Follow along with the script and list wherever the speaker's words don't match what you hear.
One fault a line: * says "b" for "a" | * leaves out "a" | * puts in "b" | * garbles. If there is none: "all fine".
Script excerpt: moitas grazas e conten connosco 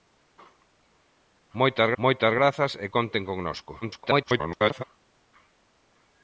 * puts in "moitas"
* garbles